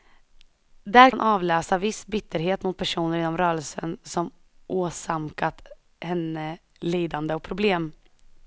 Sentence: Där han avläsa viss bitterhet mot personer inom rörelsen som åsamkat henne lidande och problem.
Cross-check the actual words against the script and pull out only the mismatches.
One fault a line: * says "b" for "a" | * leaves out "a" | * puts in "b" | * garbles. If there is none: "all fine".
all fine